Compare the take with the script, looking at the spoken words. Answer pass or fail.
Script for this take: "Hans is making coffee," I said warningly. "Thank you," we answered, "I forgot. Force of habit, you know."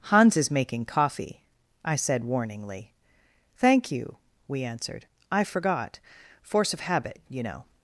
pass